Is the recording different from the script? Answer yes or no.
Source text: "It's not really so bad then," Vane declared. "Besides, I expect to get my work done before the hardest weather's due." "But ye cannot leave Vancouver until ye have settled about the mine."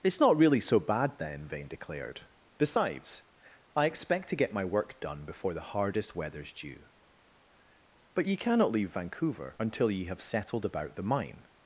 no